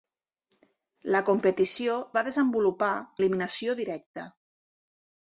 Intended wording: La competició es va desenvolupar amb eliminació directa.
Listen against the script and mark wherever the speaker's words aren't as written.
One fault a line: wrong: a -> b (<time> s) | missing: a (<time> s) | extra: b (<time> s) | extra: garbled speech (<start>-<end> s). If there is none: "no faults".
missing: es (2.0 s)
missing: amb (2.9 s)